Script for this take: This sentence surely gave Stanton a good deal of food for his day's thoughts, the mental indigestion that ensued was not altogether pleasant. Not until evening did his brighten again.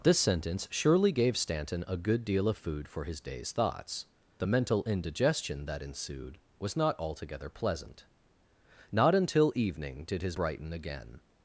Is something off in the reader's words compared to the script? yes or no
no